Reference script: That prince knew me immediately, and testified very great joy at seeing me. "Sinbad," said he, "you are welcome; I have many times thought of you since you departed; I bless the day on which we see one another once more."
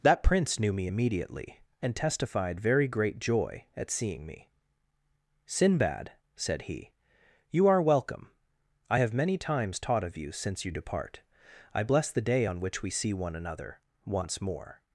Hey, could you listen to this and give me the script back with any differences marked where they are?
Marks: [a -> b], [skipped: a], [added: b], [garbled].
That prince knew me immediately, and testified very great joy at seeing me. "Sinbad," said he, "you are welcome; I have many times [thought -> taught] of you since you [departed; -> depart] I bless the day on which we see one another once more."